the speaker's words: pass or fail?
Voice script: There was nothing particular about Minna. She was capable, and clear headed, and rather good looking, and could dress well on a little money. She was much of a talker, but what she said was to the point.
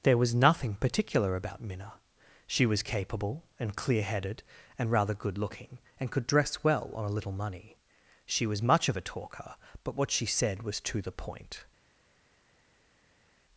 pass